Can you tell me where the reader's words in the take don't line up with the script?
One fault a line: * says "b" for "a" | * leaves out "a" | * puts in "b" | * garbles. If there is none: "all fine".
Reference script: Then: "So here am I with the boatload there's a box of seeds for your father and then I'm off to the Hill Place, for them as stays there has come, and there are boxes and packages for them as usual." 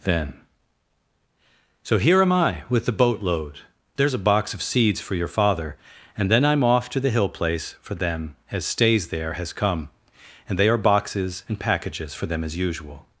* says "they" for "there"